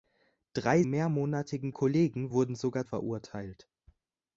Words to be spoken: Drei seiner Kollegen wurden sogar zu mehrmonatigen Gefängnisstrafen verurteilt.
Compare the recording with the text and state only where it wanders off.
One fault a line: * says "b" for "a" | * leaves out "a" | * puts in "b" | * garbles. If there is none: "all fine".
* says "mehrmonatigen" for "seiner"
* leaves out "zu mehrmonatigen Gefängnisstrafen"